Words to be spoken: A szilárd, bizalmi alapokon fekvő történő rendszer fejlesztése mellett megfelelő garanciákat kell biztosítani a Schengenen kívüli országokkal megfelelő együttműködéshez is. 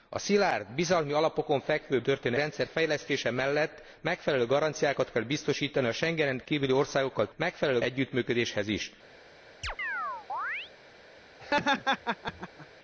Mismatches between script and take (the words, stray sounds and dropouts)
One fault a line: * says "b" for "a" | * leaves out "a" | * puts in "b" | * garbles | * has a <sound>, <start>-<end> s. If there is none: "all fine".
* has a chirp, 9.6-10.7 s
* has a laugh, 11.4-12.7 s